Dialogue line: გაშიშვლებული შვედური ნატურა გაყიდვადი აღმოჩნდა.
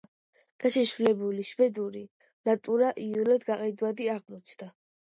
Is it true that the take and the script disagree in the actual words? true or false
true